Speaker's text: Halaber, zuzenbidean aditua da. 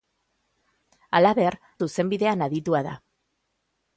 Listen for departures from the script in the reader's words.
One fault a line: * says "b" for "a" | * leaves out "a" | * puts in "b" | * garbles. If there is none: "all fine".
all fine